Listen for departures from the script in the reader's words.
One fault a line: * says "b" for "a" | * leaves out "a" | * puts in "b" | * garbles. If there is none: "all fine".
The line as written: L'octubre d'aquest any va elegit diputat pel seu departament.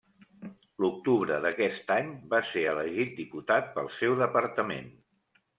* puts in "ser"